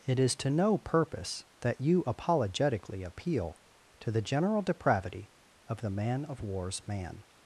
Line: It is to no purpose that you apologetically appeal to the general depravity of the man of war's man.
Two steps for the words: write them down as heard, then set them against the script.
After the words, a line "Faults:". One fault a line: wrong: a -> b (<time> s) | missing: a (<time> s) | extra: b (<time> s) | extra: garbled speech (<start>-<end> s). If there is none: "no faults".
It is to no purpose that you apologetically appeal to the general depravity of the man of war's man.
Faults:
no faults